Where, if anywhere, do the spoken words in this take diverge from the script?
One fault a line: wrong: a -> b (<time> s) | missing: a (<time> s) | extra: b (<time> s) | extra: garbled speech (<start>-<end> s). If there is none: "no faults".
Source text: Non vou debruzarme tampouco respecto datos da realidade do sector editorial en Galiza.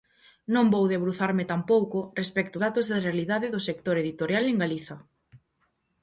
no faults